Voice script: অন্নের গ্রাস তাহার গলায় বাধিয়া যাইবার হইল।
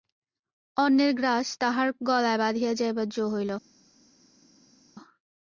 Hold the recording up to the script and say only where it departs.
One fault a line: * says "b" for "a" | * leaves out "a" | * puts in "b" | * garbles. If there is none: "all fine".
* puts in "জো"